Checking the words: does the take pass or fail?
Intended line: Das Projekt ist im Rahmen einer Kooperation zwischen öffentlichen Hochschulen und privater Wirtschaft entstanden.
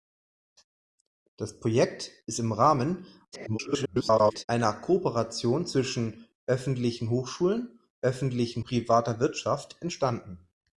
fail